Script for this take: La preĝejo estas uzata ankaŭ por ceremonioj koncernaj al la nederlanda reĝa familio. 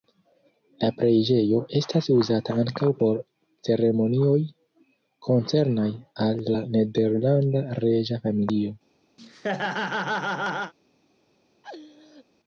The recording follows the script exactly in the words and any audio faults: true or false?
false